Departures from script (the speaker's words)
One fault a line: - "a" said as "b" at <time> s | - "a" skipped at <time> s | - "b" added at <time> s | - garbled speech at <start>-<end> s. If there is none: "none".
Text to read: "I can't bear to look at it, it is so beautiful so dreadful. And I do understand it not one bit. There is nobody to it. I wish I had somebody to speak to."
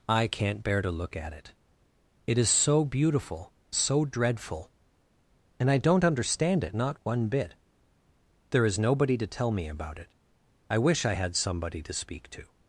- "do" said as "don't" at 5.8 s
- "tell me about" added at 9.3 s